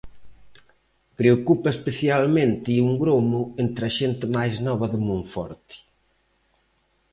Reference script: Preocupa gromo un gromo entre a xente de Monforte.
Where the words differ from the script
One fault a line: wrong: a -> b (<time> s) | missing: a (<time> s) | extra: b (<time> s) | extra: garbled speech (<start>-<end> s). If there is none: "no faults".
wrong: gromo -> especialmente (1.8 s)
extra: máis nova (4.3 s)